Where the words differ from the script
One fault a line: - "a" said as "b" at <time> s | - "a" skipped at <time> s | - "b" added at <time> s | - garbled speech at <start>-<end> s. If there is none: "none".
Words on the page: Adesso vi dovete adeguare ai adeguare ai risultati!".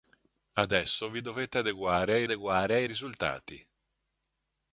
none